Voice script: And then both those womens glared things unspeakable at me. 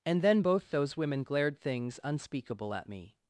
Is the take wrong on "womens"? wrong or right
wrong